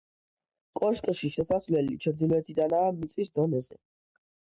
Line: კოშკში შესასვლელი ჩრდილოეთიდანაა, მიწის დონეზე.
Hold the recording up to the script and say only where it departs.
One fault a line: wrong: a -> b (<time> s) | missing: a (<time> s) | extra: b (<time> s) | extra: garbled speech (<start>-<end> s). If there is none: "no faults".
no faults